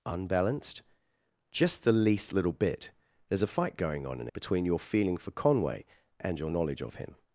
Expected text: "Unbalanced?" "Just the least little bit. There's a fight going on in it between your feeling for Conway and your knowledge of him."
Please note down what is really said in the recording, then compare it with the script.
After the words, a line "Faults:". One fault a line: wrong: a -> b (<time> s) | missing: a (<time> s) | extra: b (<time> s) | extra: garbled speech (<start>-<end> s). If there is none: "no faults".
"Unbalanced?" "Just the least little bit. There's a fight going on in between your feeling for Conway and your knowledge of him."
Faults:
missing: it (4.3 s)